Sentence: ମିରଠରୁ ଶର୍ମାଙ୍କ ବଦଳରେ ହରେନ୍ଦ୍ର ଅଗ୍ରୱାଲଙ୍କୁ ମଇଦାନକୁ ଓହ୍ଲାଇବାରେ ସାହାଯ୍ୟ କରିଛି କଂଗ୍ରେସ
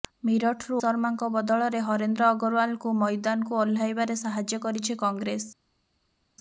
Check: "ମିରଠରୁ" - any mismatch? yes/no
no